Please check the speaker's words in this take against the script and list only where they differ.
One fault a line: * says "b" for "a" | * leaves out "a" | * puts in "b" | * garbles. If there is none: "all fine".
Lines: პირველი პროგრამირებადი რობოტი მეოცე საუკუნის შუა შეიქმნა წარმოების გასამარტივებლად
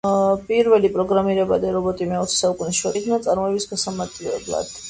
all fine